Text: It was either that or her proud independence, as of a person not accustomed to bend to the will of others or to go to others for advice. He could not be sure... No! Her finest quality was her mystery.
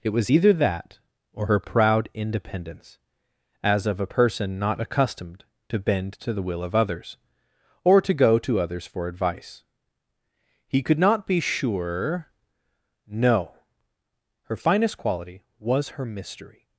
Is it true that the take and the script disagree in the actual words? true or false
false